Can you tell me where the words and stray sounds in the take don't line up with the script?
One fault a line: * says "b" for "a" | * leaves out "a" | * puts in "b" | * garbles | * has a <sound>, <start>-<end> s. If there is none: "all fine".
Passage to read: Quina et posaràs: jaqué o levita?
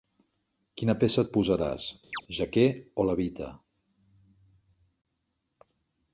* puts in "peça"
* has a chirp, 2.1-2.2 s